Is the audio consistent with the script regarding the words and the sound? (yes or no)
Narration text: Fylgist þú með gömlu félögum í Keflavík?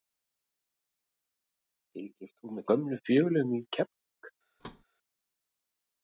no